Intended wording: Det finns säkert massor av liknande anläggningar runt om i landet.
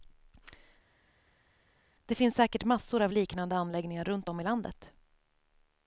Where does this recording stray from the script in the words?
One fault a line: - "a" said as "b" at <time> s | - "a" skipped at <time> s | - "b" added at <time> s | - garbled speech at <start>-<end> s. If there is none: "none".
none